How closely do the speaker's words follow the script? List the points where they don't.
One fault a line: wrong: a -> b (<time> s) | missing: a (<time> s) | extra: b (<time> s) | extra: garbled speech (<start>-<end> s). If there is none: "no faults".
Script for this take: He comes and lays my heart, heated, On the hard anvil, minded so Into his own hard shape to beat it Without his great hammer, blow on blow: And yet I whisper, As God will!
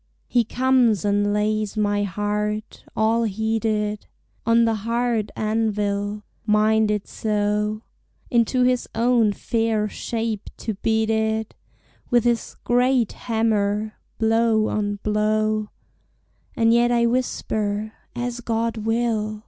extra: all (3.0 s)
wrong: hard -> fair (9.3 s)
wrong: Without -> With (12.1 s)